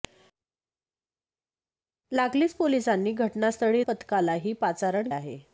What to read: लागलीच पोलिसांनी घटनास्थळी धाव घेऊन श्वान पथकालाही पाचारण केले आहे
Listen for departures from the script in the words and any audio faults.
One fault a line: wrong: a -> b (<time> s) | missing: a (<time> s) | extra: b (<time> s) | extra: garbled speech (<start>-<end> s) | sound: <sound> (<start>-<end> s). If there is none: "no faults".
missing: धाव घेऊन श्वान (3.8 s)
missing: केले (5.1 s)